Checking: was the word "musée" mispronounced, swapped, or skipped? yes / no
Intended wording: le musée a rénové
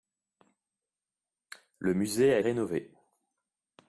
no